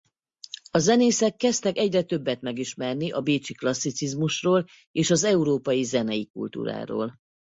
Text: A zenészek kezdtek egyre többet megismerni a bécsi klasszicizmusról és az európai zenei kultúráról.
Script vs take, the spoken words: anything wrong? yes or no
no